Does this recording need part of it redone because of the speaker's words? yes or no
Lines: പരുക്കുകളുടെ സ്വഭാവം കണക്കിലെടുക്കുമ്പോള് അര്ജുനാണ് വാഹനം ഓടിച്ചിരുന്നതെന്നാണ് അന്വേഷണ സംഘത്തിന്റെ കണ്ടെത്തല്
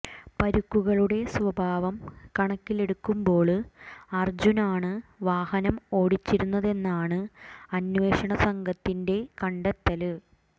no